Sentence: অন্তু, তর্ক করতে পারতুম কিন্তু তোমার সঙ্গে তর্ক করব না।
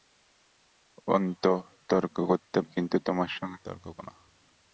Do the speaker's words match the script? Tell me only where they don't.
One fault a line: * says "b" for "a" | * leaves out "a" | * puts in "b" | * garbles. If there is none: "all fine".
* leaves out "পারতুম"
* leaves out "করব"